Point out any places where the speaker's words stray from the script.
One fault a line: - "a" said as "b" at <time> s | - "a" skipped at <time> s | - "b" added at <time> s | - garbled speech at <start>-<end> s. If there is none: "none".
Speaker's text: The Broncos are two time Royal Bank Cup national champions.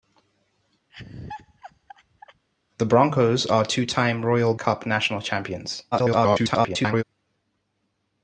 - "Bank" skipped at 4.5 s
- garbled speech at 5.9-7.0 s